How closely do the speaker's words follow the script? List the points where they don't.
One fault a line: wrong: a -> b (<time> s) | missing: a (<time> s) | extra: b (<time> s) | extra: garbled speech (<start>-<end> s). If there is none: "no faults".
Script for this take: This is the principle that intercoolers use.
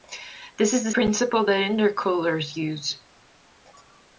no faults